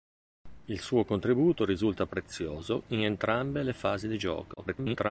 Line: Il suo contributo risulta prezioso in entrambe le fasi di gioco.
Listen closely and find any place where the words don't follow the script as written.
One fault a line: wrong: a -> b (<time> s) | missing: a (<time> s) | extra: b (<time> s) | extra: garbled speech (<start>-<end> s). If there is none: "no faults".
extra: garbled speech (4.6-5.1 s)